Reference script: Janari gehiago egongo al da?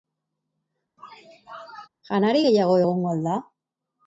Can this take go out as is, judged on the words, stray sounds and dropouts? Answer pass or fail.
fail